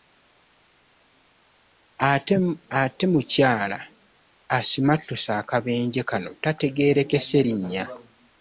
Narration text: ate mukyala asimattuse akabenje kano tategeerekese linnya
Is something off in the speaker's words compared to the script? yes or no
no